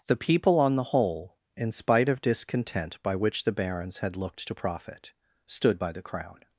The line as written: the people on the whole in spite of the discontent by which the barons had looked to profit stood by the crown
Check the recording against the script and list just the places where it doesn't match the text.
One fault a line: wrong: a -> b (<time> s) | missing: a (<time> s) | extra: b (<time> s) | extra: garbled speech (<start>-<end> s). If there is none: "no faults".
missing: the (2.2 s)